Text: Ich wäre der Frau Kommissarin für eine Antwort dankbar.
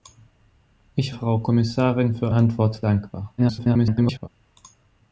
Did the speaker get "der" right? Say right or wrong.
wrong